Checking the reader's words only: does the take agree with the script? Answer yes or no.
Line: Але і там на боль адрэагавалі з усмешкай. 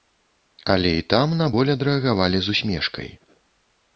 yes